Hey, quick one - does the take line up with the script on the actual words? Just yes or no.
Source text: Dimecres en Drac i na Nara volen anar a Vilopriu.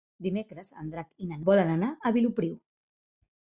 no